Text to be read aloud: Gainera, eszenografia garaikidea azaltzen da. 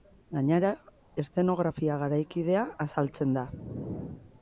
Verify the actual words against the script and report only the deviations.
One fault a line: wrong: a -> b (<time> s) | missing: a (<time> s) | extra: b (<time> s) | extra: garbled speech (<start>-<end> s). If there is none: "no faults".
no faults